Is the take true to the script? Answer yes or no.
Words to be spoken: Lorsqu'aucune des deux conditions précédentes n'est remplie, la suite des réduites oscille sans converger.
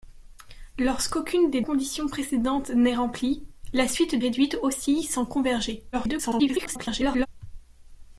no